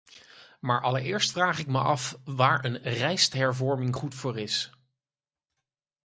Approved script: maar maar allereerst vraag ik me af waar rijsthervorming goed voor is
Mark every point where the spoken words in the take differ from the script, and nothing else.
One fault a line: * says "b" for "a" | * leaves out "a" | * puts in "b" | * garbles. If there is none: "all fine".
* leaves out "maar"
* puts in "een"